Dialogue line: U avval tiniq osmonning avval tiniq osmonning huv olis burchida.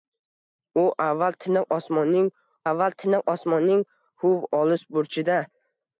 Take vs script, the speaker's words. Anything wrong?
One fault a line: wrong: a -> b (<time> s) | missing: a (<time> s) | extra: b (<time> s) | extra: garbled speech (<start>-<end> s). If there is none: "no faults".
no faults